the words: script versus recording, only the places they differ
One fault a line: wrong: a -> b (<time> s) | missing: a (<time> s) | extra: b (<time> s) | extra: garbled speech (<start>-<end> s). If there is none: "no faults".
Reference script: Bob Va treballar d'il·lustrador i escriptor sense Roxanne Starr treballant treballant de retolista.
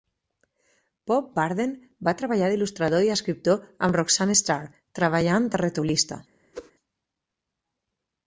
extra: Burden (1.4 s)
wrong: sense -> amb (3.9 s)
missing: treballant (5.5 s)